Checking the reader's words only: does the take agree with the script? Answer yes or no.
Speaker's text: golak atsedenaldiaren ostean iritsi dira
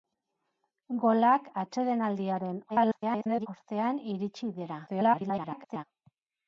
no